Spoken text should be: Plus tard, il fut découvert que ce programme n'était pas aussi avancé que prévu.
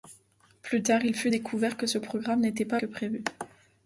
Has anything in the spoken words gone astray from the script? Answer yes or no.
yes